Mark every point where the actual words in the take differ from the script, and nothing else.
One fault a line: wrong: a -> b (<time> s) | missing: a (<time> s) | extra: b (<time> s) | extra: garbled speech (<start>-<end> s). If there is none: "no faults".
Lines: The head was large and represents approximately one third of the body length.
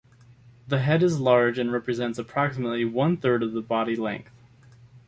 wrong: was -> is (1.0 s)